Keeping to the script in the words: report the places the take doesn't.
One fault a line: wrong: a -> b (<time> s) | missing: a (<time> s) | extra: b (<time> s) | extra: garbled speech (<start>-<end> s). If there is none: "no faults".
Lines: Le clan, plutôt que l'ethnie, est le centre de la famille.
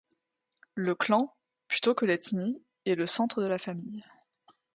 no faults